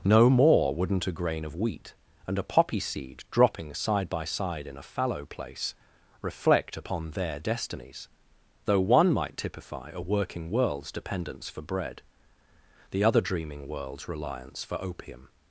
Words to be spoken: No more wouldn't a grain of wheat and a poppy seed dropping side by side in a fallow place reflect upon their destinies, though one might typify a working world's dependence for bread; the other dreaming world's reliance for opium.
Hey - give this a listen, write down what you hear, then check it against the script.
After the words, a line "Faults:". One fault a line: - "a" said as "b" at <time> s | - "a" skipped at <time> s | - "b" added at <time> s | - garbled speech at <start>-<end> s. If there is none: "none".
No more wouldn't a grain of wheat and a poppy seed dropping side by side in a fallow place reflect upon their destinies, though one might typify a working world's dependence for bread; the other dreaming world's reliance for opium.
Faults:
none